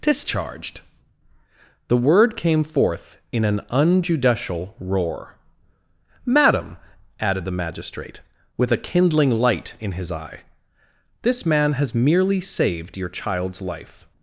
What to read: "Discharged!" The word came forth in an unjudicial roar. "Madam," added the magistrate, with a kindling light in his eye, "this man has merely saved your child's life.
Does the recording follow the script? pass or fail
pass